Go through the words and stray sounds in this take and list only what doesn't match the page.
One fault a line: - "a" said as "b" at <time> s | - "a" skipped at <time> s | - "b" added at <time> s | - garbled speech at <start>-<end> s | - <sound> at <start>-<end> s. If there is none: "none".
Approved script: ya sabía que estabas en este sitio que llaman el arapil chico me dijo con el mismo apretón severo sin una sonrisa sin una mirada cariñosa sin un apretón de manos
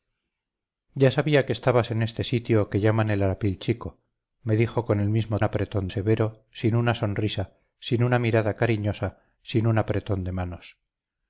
none